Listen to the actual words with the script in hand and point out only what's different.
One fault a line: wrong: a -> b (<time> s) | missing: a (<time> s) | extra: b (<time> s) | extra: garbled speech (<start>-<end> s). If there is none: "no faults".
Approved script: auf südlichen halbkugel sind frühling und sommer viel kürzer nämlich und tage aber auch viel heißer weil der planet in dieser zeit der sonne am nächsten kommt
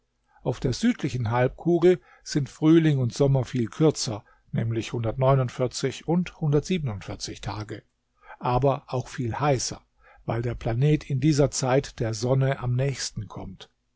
extra: der (0.6 s)